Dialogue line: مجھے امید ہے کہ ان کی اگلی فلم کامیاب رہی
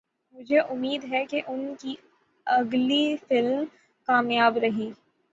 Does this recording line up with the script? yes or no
yes